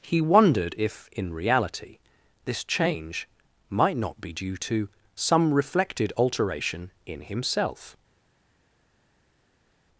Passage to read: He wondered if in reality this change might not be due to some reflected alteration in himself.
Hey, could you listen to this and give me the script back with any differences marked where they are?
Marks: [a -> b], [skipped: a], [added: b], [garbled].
He wondered if in reality this change might not be due to some reflected alteration in himself.